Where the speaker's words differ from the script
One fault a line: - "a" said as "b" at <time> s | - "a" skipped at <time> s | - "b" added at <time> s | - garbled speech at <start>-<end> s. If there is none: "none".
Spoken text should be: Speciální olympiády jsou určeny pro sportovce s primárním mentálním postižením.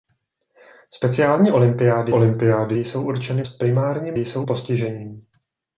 - "olympiády" added at 2.1 s
- "pro sportovce" skipped at 3.4 s
- "mentálním" said as "jsou" at 4.2 s